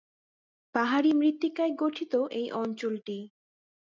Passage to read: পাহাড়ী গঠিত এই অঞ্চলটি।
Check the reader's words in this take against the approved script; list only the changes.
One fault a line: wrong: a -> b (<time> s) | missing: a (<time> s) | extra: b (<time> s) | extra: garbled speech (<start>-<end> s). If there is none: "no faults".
extra: মৃত্তিকায় (1.1 s)